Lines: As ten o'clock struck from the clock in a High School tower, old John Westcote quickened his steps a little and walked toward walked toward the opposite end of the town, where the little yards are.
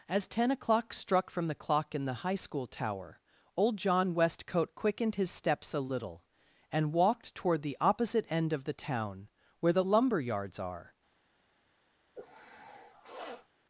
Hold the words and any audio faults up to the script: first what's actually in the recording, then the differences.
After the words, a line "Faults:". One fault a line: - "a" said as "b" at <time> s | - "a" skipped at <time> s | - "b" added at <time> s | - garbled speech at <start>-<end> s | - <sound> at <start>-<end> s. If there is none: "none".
As ten o'clock struck from the clock in the High School tower, old John Westcote quickened his steps a little and walked toward the opposite end of the town, where the lumber yards are.
Faults:
- "a" said as "the" at 2.0 s
- "walked toward" skipped at 7.6 s
- "little" said as "lumber" at 9.8 s
- sniff at 12.1-13.5 s